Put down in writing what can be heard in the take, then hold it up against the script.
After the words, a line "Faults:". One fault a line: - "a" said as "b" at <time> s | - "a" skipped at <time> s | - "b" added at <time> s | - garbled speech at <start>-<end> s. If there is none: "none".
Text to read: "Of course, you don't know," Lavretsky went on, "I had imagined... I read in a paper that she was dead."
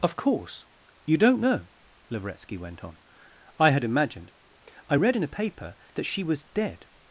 "Of course, you don't know," Lavretsky went on, "I had imagined... I read in a paper that she was dead."
Faults:
none